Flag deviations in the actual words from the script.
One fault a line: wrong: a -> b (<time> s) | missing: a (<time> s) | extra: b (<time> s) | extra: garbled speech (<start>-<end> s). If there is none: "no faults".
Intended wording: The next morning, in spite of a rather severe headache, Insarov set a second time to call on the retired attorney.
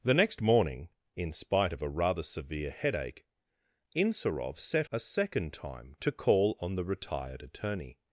no faults